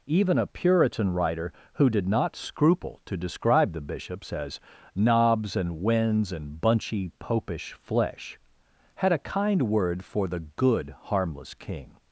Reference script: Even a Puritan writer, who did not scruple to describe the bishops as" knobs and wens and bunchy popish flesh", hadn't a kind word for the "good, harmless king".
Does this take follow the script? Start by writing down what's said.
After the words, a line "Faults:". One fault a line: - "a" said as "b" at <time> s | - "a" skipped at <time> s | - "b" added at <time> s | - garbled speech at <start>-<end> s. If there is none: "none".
Even a Puritan writer, who did not scruple to describe the bishops as" knobs and wens and bunchy popish flesh", had a kind word for the "good, harmless king".
Faults:
- "hadn't" said as "had" at 9.0 s